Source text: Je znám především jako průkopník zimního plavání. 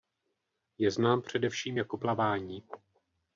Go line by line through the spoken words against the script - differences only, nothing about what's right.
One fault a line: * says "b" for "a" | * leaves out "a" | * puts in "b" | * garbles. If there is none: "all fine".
* leaves out "průkopník zimního"